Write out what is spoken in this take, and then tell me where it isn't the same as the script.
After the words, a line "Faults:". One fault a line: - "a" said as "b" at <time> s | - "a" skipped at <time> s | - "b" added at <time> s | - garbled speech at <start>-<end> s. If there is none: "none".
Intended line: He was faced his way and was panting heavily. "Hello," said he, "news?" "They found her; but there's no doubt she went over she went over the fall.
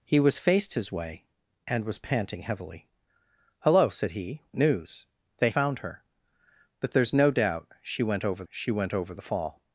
He was faced his way and was panting heavily. "Hello," said he, "news?" "They found her; but there's no doubt she went over she went over the fall.
Faults:
none